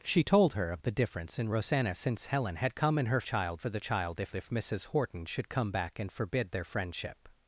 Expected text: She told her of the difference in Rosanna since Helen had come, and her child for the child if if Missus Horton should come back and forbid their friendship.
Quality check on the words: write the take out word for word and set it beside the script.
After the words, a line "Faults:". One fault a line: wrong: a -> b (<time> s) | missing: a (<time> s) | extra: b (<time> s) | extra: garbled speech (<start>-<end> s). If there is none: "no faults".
She told her of the difference in Rosanna since Helen had come, and her child for the child if if Missus Horton should come back and forbid their friendship.
Faults:
no faults